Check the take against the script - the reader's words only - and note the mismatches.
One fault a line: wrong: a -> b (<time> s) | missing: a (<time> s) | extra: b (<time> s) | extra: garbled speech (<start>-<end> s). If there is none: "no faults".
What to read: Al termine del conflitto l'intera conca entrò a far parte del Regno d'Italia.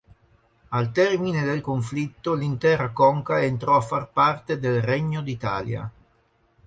no faults